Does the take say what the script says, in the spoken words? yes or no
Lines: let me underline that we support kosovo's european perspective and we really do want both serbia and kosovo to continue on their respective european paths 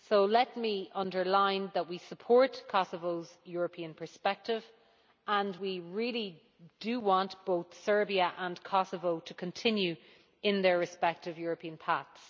yes